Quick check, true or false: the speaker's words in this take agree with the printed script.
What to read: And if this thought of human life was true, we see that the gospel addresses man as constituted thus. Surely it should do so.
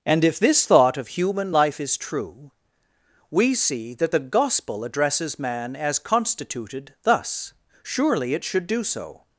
false